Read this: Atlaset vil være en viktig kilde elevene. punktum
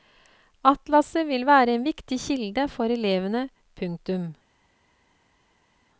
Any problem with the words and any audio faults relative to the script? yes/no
yes